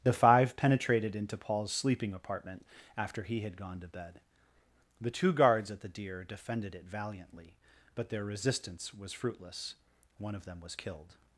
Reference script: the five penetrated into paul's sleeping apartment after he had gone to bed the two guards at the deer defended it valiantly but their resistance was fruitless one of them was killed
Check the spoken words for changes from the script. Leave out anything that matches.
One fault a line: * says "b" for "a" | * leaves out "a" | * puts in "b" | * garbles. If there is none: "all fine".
all fine